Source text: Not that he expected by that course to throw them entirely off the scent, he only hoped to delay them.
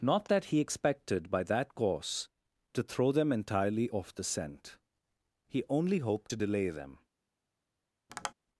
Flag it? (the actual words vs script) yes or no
no